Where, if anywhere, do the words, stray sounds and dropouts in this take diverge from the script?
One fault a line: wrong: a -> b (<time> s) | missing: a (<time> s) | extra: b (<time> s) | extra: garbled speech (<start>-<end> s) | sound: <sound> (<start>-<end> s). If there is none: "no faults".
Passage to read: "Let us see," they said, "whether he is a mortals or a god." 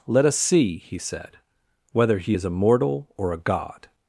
wrong: they -> he (0.8 s)
wrong: mortals -> mortal (2.6 s)